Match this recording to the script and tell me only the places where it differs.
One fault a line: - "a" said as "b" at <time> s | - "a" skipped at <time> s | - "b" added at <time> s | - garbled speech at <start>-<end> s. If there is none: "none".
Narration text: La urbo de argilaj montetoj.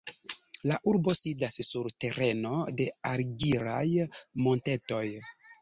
- "sidas sur tereno" added at 1.2 s